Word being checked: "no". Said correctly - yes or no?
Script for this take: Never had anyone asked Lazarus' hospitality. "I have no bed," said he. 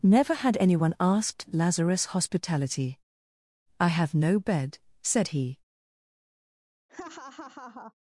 yes